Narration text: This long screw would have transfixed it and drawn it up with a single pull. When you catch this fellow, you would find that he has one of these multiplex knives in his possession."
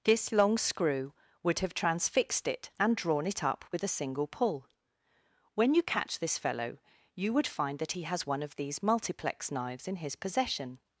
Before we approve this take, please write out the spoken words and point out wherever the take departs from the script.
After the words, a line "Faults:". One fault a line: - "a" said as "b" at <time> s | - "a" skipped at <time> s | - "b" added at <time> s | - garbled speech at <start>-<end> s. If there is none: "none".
This long screw would have transfixed it and drawn it up with a single pull. When you catch this fellow, you would find that he has one of these multiplex knives in his possession."
Faults:
none